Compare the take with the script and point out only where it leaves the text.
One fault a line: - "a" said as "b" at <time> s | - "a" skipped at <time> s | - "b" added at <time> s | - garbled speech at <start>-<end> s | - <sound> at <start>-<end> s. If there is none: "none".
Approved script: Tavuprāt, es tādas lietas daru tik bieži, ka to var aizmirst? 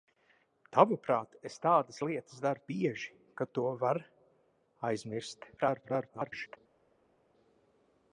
- "tik" skipped at 2.6 s
- garbled speech at 5.6-6.6 s